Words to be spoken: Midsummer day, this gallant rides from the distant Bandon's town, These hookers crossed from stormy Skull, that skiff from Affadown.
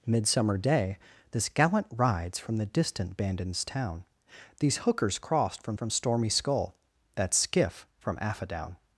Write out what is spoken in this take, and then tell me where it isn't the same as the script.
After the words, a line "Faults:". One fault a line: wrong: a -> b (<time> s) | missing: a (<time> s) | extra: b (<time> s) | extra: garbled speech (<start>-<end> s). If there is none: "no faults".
Midsummer day, this gallant rides from the distant Bandon's town, These hookers crossed from from stormy Skull, that skiff from Affadown.
Faults:
extra: from (5.8 s)